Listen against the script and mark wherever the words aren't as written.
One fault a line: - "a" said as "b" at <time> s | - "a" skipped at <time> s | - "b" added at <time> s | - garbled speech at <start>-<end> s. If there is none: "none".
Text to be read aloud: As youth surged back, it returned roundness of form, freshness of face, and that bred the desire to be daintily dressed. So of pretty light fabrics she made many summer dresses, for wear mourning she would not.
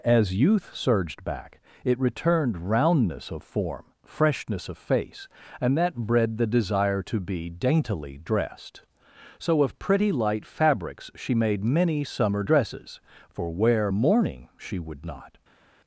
none